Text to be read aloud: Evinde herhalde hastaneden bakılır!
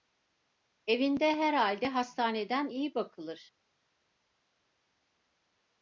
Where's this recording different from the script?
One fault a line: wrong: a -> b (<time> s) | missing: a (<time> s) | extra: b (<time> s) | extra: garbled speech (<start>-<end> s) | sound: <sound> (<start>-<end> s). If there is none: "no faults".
extra: iyi (2.6 s)